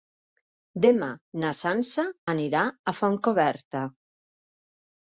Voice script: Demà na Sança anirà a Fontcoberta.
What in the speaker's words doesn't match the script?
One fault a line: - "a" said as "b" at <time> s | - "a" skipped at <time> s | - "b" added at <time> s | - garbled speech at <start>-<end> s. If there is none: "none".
none